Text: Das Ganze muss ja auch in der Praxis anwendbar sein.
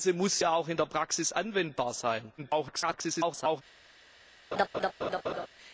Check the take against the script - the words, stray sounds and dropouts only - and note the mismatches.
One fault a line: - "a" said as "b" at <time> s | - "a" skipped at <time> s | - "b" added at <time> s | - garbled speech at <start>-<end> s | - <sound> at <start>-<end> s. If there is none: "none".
- garbled speech at 2.4-3.6 s
- laugh at 4.5-5.5 s